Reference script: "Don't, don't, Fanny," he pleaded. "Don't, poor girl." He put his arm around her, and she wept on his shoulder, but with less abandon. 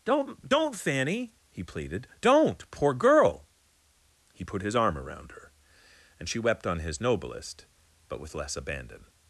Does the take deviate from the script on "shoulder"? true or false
true